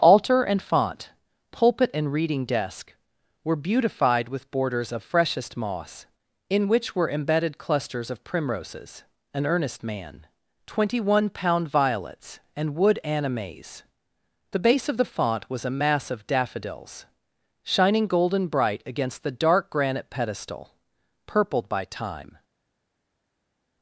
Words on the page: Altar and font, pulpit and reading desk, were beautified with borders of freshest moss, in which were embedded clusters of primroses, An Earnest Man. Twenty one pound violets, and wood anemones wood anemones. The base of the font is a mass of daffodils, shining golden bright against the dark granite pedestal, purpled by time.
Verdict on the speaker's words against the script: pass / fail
fail